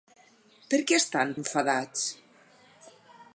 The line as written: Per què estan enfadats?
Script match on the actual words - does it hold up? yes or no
yes